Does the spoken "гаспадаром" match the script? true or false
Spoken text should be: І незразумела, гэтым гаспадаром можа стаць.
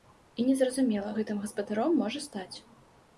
true